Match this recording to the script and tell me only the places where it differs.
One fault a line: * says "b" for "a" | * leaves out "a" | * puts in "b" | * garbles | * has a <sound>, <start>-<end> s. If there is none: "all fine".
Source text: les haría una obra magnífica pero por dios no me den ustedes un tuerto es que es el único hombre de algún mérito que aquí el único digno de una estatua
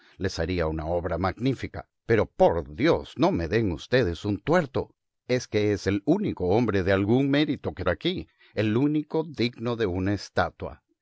all fine